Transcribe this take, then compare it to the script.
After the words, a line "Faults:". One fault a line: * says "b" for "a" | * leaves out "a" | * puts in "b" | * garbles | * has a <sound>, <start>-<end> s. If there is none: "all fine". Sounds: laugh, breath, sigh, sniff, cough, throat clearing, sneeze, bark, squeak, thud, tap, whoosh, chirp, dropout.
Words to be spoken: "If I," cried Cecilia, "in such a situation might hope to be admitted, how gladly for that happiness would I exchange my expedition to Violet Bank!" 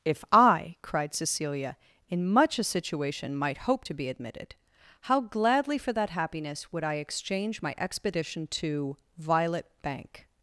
"If I," cried Cecilia, "in much a situation might hope to be admitted, how gladly for that happiness would I exchange my expedition to Violet Bank!"
Faults:
* says "much" for "such"